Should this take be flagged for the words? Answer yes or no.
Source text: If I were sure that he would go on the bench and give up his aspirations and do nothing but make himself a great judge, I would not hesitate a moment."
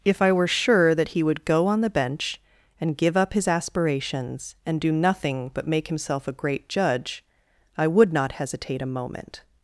no